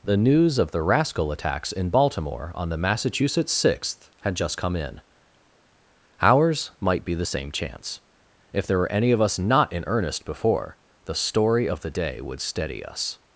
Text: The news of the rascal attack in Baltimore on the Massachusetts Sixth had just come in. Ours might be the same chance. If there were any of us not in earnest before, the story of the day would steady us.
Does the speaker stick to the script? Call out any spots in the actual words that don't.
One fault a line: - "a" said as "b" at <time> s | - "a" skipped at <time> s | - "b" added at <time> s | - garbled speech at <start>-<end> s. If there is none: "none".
- "attack" said as "attacks" at 1.3 s